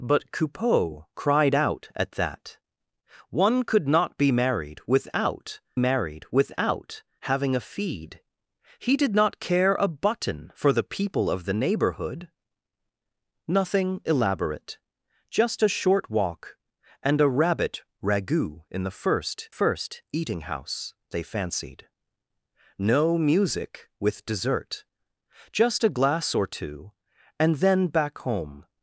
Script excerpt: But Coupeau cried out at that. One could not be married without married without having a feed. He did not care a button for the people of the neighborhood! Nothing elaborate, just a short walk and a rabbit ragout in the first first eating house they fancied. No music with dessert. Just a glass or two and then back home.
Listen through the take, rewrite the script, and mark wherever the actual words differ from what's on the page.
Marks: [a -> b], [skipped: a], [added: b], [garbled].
But Coupeau cried out at that. One could not be married without married without having a feed. He did not care a button for the people of the neighborhood! Nothing elaborate, just a short walk and a rabbit ragout in the first first eating house they fancied. No music with dessert. Just a glass or two and then back home.